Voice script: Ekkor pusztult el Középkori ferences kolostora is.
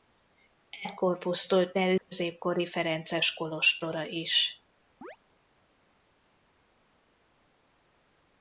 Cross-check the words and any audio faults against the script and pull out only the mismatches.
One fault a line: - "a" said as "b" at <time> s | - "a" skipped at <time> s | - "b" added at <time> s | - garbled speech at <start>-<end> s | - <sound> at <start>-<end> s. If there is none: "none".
- chirp at 5.0-5.2 s